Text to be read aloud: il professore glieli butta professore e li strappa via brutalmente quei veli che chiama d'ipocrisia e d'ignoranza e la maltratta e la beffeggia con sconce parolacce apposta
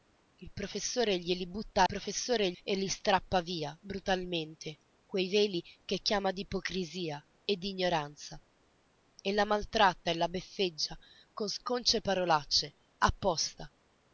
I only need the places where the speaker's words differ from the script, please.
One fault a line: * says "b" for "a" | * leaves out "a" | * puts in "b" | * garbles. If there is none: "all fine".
all fine